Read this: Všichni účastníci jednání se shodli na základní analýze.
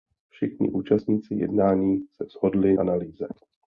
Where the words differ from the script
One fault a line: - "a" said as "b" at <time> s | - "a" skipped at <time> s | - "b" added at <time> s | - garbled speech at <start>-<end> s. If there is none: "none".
- "na základní" skipped at 2.8 s